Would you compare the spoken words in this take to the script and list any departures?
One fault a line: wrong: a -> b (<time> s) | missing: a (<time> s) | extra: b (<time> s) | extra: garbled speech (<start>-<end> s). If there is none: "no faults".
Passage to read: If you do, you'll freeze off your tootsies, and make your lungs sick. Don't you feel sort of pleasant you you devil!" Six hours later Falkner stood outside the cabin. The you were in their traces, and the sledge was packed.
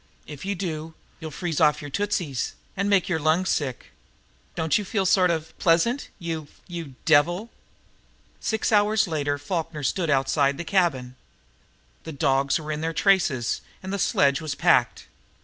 wrong: you -> dogs (12.1 s)